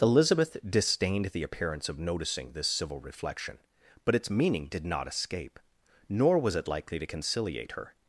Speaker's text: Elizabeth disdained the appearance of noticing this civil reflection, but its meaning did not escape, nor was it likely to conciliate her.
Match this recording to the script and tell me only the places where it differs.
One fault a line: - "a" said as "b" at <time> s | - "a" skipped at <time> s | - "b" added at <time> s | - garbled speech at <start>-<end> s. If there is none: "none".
none